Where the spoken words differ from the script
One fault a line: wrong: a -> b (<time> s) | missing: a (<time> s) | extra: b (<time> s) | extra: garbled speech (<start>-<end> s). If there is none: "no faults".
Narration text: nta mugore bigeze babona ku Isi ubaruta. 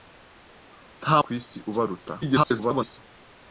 missing: mugore bigeze babona (1.2 s)
extra: garbled speech (2.2-3.0 s)